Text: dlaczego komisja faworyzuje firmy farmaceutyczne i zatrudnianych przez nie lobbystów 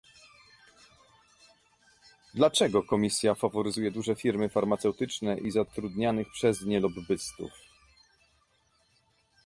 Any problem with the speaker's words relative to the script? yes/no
yes